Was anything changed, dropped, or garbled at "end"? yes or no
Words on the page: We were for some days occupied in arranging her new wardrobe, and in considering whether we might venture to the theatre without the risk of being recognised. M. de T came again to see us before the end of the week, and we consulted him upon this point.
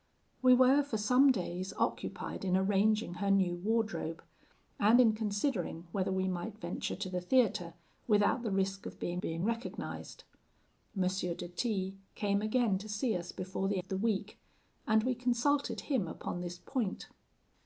yes